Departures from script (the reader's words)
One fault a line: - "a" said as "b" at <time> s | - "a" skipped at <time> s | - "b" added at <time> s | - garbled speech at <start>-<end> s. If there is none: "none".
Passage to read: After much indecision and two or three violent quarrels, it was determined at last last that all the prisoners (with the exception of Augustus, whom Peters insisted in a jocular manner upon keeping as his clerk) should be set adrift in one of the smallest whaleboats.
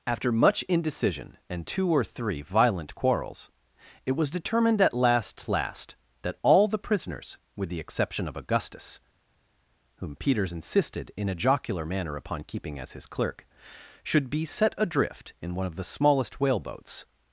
none